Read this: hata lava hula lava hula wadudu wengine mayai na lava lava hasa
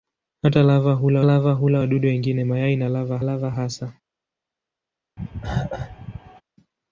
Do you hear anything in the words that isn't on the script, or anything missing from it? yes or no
no